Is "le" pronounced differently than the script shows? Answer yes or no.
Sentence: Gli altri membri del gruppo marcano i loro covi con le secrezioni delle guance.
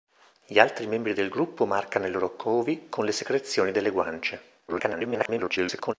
no